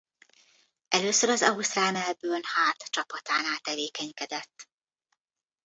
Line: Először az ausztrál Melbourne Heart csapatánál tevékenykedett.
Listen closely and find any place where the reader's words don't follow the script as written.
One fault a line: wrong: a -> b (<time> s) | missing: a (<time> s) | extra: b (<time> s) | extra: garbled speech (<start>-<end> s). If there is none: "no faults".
no faults